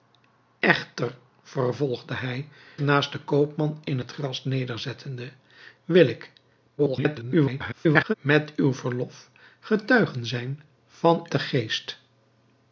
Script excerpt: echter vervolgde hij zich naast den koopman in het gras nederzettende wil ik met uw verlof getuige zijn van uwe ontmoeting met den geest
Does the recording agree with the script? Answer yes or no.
no